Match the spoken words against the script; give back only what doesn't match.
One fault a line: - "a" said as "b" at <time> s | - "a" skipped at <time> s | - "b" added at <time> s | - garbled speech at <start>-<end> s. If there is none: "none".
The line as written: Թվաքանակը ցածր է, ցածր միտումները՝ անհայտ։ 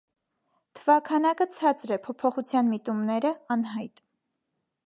- "ցածր" said as "փոփոխության" at 2.1 s